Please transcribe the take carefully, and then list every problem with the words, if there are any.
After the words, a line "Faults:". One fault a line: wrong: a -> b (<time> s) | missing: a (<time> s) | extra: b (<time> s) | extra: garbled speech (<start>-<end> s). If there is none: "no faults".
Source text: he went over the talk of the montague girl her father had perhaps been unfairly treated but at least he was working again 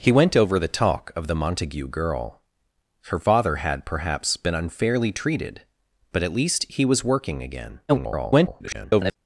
he went over the talk of the montague girl her father had perhaps been unfairly treated but at least he was working again [garbled]
Faults:
extra: garbled speech (7.9-9.2 s)